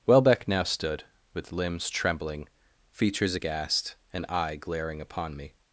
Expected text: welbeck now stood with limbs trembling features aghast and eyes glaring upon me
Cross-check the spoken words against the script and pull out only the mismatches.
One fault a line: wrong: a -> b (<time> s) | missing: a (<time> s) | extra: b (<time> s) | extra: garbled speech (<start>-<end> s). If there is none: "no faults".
wrong: eyes -> eye (4.3 s)